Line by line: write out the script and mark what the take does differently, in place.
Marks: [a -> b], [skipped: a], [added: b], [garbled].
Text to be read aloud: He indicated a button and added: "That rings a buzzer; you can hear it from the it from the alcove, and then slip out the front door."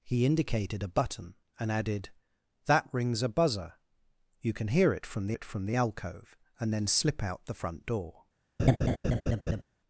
He indicated a button and added: "That rings a buzzer; you can hear it from the it from the alcove, and then slip out the front door."